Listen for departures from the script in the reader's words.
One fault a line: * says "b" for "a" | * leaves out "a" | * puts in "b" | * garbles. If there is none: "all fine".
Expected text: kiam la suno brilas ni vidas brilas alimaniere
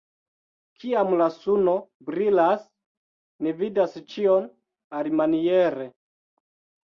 * says "ĉion" for "brilas"